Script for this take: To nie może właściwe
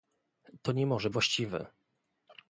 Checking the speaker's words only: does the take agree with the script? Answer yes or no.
yes